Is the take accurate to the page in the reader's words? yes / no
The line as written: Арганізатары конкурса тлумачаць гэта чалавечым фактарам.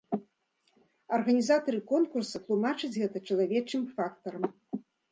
yes